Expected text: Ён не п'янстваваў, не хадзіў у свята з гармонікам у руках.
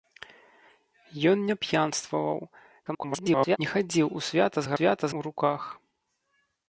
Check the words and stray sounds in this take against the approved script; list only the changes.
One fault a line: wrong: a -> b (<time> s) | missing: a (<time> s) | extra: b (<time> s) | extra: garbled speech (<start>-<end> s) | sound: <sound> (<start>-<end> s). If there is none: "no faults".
extra: garbled speech (2.9-3.6 s)
wrong: гармонікам -> свята (4.7 s)